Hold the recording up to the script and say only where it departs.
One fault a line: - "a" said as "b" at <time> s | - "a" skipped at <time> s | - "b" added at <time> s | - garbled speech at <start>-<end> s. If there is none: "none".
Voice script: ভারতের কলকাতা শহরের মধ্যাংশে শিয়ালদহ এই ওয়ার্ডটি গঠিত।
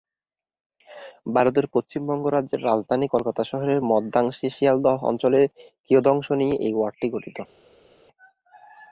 - "পশ্চিমবঙ্গ রাজ্যের রাজধানী" added at 1.7 s
- "অঞ্চলের কিয়দংশ নিয়ে" added at 5.1 s